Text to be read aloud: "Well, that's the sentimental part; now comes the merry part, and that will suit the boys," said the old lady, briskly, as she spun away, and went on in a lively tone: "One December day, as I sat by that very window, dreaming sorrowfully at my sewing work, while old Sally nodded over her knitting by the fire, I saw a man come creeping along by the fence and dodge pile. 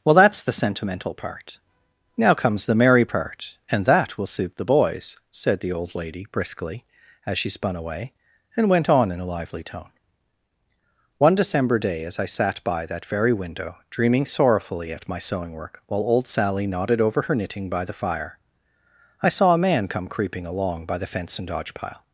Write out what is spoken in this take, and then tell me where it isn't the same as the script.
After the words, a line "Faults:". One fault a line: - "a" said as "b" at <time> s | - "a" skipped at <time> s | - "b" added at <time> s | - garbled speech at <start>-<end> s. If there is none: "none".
"Well, that's the sentimental part; now comes the merry part, and that will suit the boys," said the old lady, briskly, as she spun away, and went on in a lively tone: "One December day, as I sat by that very window, dreaming sorrowfully at my sewing work, while old Sally nodded over her knitting by the fire, I saw a man come creeping along by the fence and dodge pile.
Faults:
none